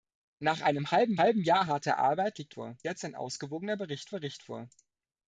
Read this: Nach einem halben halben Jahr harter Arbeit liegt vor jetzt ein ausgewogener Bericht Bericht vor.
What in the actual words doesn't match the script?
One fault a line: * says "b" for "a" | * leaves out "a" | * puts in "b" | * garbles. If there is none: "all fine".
all fine